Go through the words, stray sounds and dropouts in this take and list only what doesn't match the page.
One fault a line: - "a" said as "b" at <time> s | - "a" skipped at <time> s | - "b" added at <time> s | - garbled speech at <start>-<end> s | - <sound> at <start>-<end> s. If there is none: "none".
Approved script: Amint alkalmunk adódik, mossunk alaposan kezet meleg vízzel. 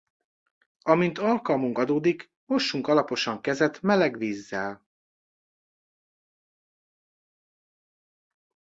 none